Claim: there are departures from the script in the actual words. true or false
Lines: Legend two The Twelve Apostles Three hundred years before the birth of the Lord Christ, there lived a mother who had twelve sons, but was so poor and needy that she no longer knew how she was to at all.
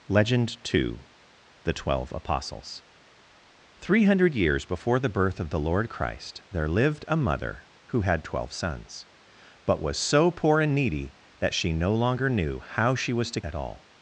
false